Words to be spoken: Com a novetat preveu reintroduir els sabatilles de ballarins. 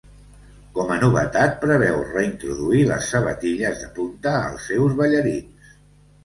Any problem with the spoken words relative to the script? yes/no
yes